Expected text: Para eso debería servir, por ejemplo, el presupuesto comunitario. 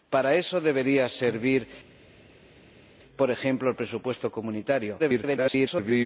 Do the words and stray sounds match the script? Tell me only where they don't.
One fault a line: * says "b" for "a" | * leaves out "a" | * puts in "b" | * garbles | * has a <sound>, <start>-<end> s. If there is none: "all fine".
* garbles